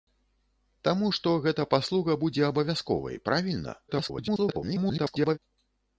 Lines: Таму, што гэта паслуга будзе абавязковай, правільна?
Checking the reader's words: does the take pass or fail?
fail